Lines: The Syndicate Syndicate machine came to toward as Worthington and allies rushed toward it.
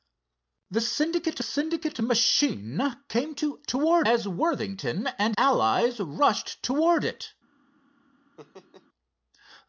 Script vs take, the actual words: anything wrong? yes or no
no